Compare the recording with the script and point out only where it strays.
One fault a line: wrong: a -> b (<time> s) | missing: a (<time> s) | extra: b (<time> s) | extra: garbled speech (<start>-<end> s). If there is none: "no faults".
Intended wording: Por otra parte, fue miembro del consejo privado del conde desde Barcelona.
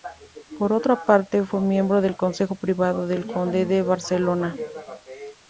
wrong: desde -> de (3.7 s)